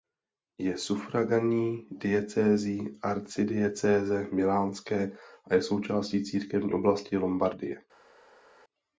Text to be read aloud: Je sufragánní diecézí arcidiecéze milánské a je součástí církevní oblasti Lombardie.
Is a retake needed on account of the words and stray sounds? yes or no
no